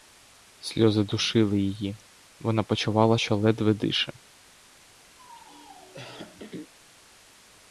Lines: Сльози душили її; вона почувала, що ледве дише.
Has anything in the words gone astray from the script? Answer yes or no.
no